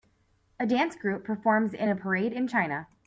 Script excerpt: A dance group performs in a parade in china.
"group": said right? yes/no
yes